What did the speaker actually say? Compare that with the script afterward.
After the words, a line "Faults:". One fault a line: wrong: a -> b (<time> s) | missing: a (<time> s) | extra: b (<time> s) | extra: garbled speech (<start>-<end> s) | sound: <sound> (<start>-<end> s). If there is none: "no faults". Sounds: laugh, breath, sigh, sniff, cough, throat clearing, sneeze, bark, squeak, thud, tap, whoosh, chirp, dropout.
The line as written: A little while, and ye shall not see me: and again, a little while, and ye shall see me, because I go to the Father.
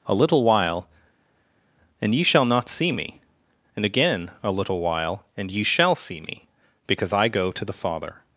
A little while, and ye shall not see me: and again, a little while, and ye shall see me, because I go to the Father.
Faults:
no faults